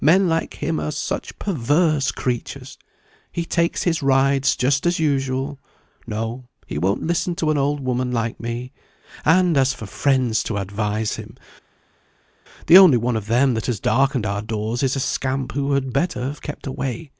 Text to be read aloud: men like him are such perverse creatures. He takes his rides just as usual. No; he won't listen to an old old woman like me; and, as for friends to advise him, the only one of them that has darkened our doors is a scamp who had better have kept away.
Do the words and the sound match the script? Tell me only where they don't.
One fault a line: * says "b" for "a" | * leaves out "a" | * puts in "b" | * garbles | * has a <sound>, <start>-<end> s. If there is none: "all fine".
* leaves out "old"